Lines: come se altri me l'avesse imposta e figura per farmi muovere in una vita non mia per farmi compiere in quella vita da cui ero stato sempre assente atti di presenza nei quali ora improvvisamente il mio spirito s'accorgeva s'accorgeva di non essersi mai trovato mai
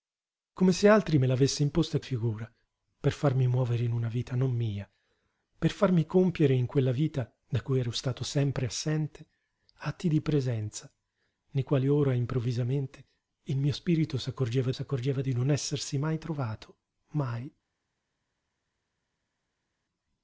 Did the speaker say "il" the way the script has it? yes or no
yes